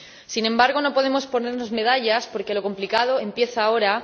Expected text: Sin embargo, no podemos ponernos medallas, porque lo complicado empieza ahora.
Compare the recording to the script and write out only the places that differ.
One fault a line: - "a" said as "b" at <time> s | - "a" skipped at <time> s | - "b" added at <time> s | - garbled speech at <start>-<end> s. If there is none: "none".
none